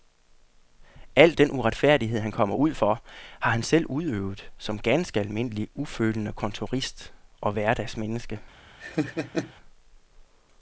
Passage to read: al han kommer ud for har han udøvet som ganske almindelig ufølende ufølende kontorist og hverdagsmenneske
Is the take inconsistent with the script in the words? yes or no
yes